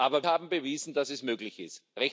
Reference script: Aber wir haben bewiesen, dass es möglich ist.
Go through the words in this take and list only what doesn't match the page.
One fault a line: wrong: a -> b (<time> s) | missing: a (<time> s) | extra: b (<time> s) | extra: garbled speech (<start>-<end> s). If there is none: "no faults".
missing: wir (0.2 s)